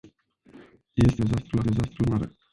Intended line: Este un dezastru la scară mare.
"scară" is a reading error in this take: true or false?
true